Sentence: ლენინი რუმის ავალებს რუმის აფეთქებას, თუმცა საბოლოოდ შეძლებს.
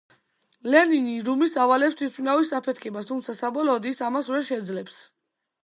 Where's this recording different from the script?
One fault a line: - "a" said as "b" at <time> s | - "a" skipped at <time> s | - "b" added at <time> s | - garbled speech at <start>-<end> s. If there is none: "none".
- "რუმის" said as "თვითმფრინავის" at 2.0 s
- "ის ამას ვერ" added at 3.9 s